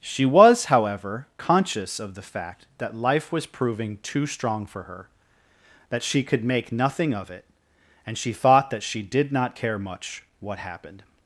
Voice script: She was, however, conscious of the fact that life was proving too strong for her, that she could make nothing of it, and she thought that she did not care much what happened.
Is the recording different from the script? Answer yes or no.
no